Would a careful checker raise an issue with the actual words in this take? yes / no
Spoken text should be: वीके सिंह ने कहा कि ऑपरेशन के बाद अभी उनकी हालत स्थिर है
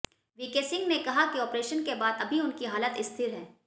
no